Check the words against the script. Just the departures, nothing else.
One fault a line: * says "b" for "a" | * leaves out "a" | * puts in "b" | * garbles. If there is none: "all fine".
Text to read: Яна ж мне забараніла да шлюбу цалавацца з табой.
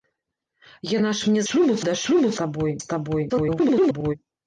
* says "шлюбу" for "забараніла"
* says "табой" for "цалавацца"
* garbles